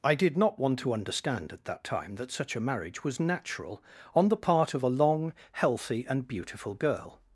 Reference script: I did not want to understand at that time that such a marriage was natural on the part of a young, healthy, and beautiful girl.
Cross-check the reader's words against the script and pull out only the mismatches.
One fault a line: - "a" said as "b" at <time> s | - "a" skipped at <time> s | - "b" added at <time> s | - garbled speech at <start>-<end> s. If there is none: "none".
- "young" said as "long" at 4.9 s